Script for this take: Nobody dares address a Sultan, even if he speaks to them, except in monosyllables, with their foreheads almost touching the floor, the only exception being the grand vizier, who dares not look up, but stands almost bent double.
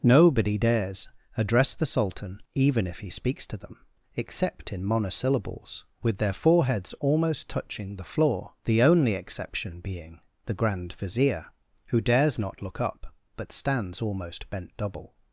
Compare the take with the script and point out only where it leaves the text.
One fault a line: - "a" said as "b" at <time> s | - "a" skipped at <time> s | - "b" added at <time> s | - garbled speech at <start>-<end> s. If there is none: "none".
- "a" said as "the" at 1.8 s